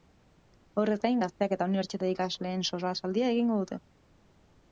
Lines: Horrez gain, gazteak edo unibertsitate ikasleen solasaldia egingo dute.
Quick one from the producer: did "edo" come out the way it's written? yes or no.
no